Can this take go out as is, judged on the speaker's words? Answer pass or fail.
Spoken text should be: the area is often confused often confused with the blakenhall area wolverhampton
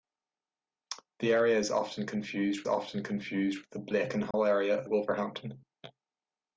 pass